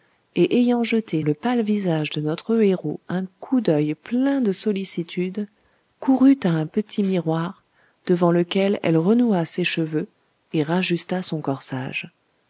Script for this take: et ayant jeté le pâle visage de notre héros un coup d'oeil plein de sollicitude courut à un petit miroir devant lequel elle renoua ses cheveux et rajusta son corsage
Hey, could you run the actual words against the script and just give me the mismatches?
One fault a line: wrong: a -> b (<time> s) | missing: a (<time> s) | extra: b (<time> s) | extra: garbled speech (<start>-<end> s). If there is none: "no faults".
no faults